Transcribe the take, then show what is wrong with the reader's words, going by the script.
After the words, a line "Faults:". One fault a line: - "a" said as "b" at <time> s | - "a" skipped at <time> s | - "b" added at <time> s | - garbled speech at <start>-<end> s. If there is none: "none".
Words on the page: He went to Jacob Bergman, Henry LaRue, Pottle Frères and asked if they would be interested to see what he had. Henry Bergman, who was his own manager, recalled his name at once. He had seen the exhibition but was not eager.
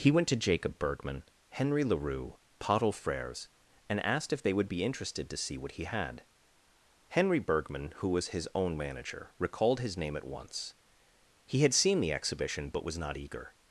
He went to Jacob Bergman, Henry LaRue, Pottle Frères and asked if they would be interested to see what he had. Henry Bergman, who was his own manager, recalled his name at once. He had seen the exhibition but was not eager.
Faults:
none